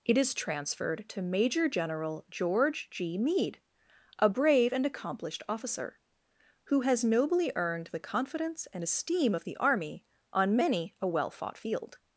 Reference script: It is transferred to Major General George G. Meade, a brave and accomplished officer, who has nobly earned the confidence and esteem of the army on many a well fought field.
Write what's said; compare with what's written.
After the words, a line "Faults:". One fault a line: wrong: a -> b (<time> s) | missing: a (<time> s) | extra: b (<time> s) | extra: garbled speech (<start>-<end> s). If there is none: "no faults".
It is transferred to Major General George G. Meade, a brave and accomplished officer, who has nobly earned the confidence and esteem of the army on many a well fought field.
Faults:
no faults